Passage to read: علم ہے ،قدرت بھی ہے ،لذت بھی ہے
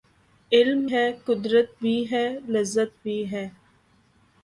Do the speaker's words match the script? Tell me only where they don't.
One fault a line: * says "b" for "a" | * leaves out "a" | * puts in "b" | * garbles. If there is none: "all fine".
all fine